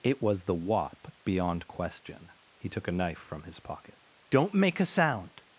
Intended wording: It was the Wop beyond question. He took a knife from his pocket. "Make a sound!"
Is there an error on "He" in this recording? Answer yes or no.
no